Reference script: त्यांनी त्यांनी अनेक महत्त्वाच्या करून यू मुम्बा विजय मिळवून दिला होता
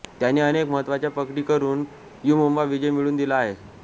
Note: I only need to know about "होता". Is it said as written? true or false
false